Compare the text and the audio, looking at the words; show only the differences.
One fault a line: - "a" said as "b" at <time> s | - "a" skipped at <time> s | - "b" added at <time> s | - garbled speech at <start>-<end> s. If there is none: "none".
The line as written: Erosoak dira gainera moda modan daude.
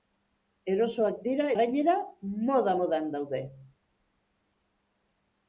none